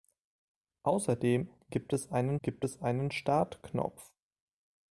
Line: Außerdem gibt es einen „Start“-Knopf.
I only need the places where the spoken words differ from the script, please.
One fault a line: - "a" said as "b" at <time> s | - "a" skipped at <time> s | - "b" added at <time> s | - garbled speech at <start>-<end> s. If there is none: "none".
- "gibt es einen" added at 2.4 s